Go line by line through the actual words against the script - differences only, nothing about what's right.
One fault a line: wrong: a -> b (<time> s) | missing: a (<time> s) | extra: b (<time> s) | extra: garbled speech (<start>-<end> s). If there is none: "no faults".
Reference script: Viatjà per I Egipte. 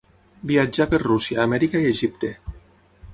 extra: Rússia Amèrica (1.0 s)